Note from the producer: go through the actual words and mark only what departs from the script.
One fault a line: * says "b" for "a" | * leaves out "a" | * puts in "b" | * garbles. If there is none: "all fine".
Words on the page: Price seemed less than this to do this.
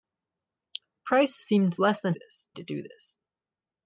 all fine